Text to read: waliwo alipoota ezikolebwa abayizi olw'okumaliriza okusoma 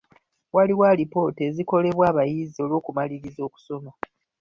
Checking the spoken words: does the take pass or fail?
pass